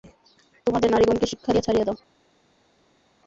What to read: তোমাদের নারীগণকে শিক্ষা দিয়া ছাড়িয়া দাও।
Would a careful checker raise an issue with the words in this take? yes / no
no